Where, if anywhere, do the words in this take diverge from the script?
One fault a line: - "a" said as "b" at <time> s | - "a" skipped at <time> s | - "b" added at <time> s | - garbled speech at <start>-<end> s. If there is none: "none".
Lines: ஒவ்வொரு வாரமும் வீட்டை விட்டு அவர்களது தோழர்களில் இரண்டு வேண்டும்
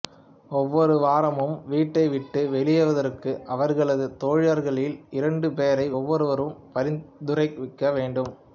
- "வெளியேறுவதற்கு" added at 2.5 s
- "பேரை ஒவ்வொருவரும் பரிந்துரைக்க" added at 5.6 s